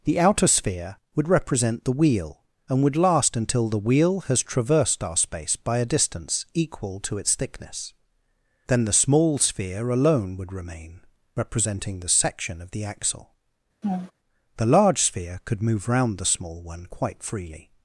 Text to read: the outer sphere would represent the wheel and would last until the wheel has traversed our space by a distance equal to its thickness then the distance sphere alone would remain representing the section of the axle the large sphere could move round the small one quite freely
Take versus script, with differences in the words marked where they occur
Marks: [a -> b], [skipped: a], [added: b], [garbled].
the outer sphere would represent the wheel and would last until the wheel has traversed our space by a distance equal to its thickness then the [distance -> small] sphere alone would remain representing the section of the axle the large sphere could move round the small one quite freely